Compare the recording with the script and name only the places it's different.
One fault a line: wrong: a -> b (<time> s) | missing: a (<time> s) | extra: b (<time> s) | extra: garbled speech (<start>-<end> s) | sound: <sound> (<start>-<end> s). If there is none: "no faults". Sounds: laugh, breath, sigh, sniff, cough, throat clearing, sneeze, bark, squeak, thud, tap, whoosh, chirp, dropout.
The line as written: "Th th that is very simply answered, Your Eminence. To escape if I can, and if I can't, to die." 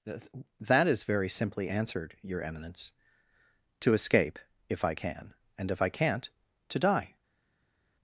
missing: Th th (0.1 s)